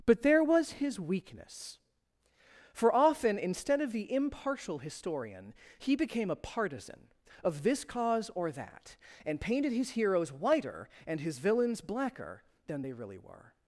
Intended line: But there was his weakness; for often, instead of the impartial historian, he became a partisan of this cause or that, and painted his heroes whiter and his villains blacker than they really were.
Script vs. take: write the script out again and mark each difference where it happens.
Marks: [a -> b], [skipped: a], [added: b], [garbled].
But there was his weakness; for often, instead of the impartial historian, he became a partisan of this cause or that, and painted his heroes whiter and his villains blacker than they really were.